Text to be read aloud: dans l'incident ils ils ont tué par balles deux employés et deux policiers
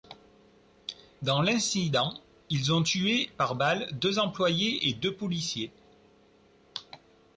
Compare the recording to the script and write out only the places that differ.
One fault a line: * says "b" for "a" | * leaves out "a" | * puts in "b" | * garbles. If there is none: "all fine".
* leaves out "ils"